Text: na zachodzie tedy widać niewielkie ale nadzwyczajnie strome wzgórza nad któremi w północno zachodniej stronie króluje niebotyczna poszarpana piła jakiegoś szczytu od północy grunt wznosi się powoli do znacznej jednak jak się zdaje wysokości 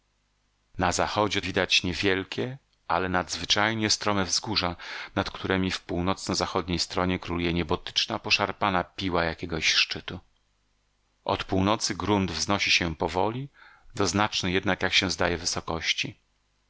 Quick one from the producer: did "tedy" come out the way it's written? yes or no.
no